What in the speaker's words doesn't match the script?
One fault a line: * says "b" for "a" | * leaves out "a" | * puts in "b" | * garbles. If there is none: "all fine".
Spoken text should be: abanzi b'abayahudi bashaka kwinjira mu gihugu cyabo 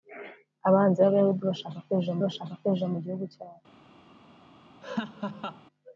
* puts in "bashaka kwinjira"